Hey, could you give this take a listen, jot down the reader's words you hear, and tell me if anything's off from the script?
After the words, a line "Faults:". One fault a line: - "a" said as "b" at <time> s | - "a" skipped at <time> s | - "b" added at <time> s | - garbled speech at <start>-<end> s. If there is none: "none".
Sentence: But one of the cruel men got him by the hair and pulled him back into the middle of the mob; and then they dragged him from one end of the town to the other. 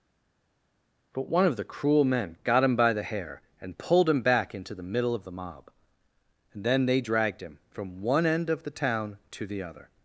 But one of the cruel men got him by the hair and pulled him back into the middle of the mob; and then they dragged him from one end of the town to the other.
Faults:
none